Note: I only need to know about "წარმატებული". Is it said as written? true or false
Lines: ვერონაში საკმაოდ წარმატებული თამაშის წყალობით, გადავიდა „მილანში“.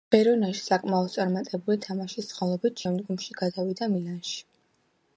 true